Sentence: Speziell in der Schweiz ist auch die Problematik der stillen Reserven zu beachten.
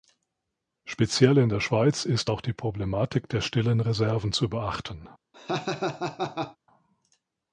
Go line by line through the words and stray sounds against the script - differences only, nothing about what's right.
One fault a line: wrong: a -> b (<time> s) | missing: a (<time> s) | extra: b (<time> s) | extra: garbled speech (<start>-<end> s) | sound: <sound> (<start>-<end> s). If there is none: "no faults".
sound: laugh (5.3-6.6 s)